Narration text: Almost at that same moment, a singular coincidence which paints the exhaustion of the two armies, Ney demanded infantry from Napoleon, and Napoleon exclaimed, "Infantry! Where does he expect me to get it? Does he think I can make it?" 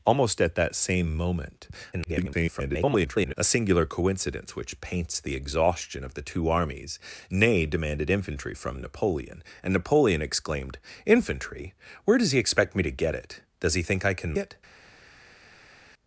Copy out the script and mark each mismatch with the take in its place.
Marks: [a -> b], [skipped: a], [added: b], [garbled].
Almost at that same moment, [garbled] a singular coincidence which paints the exhaustion of the two armies, Ney demanded infantry from Napoleon, and Napoleon exclaimed, "Infantry! Where does he expect me to get it? Does he think I can [skipped: make] it?"